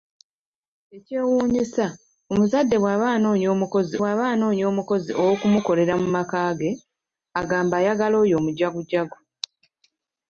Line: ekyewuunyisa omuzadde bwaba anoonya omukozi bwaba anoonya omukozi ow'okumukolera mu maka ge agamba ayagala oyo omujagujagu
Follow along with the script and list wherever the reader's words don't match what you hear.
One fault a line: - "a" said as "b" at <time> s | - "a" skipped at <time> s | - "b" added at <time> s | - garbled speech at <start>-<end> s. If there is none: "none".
none